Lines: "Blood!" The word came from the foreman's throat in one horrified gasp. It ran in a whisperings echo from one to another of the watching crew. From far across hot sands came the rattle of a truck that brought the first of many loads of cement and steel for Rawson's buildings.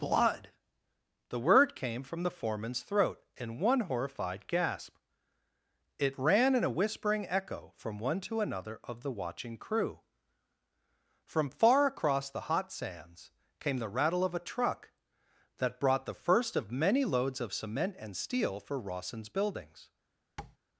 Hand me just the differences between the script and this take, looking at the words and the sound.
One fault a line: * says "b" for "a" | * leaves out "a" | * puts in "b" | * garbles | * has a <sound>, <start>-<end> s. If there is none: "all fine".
* says "whispering" for "whisperings"
* puts in "the"
* has a tap, 20.4-20.6 s